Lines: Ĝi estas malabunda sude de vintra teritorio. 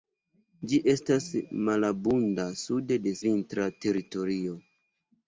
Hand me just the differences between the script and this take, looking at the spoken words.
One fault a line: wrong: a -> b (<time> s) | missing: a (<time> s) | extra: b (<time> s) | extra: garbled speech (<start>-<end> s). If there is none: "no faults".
no faults